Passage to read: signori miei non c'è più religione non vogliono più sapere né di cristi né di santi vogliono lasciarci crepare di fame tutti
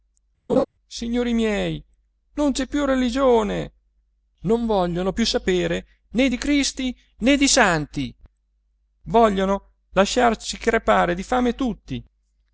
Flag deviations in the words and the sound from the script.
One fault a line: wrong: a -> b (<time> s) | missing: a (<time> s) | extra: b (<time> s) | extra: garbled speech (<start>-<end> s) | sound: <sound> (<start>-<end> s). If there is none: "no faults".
sound: laugh (0.5-0.6 s)